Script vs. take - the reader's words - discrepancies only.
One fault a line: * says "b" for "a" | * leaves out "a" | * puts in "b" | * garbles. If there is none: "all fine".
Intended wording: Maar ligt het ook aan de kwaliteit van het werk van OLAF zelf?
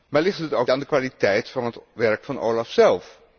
all fine